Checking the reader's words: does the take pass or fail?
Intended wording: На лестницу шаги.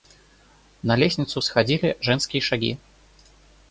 fail